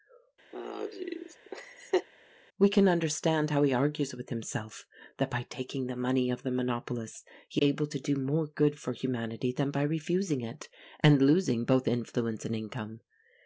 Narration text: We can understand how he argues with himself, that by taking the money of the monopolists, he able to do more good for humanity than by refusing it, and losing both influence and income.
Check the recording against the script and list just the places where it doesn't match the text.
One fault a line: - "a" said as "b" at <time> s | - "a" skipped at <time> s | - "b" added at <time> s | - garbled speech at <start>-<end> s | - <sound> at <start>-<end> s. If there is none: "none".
- laugh at 0.5-2.1 s